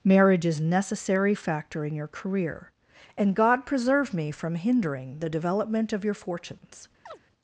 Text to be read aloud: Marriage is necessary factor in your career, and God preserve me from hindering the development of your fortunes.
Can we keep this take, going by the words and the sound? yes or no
no